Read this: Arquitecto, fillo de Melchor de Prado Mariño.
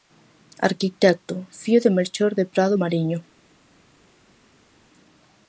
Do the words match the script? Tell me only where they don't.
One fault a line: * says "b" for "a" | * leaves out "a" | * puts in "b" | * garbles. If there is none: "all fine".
all fine